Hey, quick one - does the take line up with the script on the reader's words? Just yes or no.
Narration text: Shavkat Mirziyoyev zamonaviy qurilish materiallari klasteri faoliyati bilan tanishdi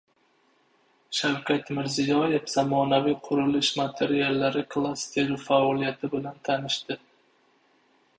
yes